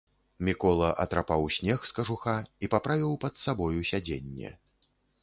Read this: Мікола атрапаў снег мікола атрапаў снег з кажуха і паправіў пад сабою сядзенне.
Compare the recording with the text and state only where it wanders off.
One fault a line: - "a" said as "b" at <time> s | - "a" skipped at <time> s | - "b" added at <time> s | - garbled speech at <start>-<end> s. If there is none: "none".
- "мікола атрапаў снег" skipped at 1.9 s